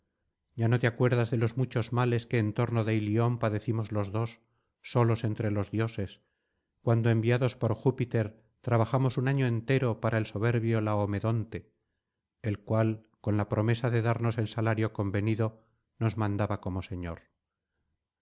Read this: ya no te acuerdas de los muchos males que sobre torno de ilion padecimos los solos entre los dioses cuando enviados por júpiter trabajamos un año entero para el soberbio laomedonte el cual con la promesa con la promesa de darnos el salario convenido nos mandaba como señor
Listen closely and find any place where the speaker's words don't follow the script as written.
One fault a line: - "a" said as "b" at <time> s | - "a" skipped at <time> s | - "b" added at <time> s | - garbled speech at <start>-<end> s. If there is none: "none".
- "sobre" said as "en" at 2.4 s
- "dos" added at 4.1 s
- "con la promesa" skipped at 13.9 s